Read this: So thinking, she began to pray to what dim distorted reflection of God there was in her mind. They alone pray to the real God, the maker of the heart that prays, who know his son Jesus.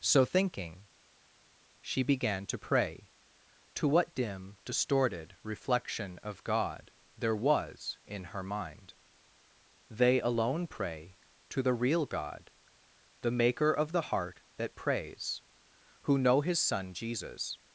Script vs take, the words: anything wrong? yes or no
no